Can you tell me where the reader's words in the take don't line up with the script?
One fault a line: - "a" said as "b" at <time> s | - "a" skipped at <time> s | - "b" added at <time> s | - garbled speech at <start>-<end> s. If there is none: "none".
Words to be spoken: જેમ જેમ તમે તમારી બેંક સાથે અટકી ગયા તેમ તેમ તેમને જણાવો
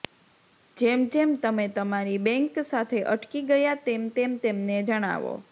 none